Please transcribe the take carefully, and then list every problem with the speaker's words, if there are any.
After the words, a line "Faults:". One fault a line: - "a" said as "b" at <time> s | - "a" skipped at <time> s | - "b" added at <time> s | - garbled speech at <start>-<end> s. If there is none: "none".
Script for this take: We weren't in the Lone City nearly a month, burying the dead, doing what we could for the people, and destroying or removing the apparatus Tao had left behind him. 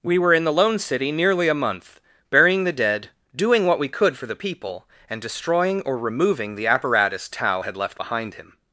We were in the Lone City nearly a month, burying the dead, doing what we could for the people, and destroying or removing the apparatus Tao had left behind him.
Faults:
- "weren't" said as "were" at 0.2 s